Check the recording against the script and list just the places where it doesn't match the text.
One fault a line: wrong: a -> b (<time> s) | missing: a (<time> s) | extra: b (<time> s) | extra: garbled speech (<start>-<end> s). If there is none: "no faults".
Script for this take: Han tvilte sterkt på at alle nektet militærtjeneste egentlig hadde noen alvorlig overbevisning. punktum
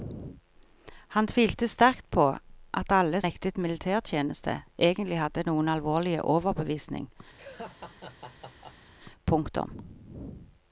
no faults